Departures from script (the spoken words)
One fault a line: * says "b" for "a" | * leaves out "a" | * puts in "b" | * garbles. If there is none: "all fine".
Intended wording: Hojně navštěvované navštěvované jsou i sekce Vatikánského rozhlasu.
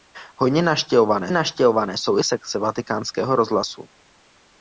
all fine